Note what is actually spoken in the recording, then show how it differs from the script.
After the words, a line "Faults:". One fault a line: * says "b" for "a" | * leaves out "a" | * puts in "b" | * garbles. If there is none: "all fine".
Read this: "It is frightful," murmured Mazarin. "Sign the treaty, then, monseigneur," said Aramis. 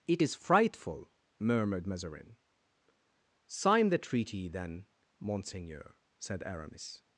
"It is frightful," murmured Mazarin. "Sign the treaty, then, monseigneur," said Aramis.
Faults:
all fine